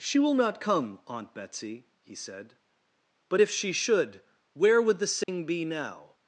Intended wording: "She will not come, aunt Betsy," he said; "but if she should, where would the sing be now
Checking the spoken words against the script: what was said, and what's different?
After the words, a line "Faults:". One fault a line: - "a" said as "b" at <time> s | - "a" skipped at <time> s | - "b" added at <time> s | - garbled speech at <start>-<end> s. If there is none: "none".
"She will not come, aunt Betsy," he said; "but if she should, where would the sing be now
Faults:
none